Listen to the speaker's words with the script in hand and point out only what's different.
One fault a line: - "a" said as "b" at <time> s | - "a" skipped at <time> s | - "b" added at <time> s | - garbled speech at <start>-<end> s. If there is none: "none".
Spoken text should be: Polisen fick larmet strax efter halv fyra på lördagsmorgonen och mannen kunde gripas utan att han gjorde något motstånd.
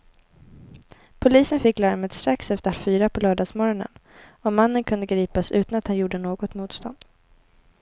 - "halv" skipped at 2.7 s